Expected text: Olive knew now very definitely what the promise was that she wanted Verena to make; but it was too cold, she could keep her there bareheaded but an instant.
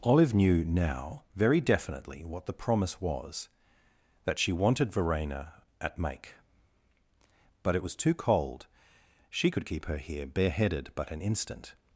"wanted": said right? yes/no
yes